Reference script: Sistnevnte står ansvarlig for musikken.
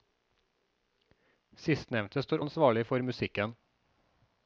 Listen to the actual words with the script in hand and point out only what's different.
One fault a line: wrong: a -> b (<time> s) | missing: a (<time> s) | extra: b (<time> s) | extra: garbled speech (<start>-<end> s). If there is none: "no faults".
no faults